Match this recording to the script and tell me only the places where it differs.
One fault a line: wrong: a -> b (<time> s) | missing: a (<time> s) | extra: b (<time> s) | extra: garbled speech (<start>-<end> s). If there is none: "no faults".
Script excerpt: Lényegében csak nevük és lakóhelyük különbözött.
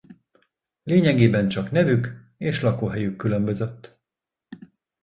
no faults